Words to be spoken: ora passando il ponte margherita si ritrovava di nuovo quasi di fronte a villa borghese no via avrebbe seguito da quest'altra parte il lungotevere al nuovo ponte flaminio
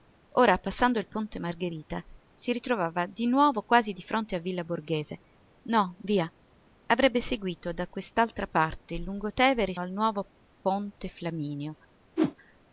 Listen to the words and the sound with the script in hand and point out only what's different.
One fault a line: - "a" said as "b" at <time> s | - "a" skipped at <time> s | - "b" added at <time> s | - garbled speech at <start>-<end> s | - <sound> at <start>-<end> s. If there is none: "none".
- whoosh at 12.2-12.3 s